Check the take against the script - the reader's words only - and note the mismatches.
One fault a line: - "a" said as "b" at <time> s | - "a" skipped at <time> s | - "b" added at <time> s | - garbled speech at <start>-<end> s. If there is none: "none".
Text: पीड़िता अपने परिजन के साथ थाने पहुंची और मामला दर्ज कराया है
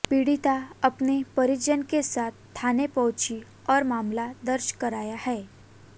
none